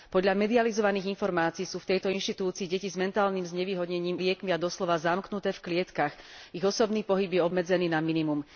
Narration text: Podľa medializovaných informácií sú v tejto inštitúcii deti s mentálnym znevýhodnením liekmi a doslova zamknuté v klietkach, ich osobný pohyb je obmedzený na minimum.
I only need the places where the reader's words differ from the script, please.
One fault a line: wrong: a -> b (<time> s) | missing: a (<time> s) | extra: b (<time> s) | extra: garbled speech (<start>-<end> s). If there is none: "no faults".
no faults